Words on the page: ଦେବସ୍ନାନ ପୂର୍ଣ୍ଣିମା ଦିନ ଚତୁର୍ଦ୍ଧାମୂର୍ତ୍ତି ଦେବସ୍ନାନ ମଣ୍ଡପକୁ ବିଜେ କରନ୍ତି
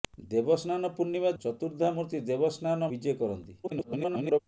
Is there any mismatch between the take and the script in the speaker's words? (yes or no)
yes